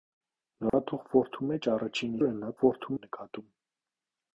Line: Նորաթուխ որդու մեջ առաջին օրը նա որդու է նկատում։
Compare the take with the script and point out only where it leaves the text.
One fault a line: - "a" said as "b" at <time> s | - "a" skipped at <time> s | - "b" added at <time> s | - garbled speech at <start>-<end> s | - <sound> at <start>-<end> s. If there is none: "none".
- dropout at 0.7-0.7 s